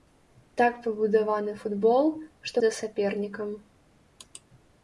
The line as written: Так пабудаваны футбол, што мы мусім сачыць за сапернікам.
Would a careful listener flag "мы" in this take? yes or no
yes